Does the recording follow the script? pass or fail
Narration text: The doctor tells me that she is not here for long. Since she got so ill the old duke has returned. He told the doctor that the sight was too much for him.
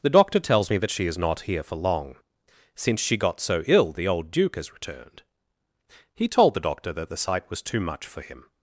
pass